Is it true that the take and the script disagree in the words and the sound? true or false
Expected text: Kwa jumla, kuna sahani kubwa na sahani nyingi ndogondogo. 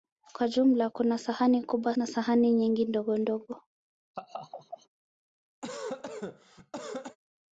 true